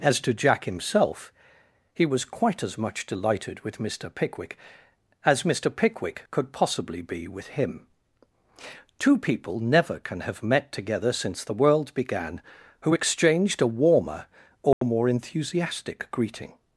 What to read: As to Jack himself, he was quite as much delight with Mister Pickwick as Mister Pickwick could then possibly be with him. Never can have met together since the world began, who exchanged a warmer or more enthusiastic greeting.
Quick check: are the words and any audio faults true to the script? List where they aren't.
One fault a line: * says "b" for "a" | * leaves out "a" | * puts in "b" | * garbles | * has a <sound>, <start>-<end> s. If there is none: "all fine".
* says "delighted" for "delight"
* leaves out "then"
* puts in "Two people"
* has a dropout, 14.7-14.8 s